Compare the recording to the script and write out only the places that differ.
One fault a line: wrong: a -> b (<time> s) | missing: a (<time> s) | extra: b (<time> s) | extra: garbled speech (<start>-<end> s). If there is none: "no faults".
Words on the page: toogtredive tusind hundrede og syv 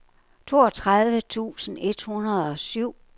extra: et (1.8 s)